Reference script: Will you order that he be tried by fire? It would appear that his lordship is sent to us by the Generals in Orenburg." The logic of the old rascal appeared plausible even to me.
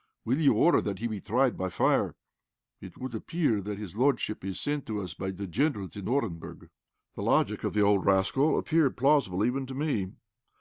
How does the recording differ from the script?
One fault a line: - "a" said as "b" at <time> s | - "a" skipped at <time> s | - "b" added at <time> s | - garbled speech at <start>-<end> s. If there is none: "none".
none